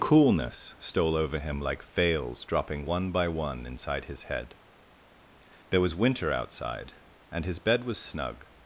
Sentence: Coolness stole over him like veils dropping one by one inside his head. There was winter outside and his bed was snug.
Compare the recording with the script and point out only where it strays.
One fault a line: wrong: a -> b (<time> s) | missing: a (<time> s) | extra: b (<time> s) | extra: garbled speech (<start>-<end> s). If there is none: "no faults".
no faults